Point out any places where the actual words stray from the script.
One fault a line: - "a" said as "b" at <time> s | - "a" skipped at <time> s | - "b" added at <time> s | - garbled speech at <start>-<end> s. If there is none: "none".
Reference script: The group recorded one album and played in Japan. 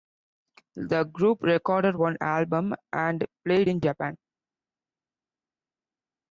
none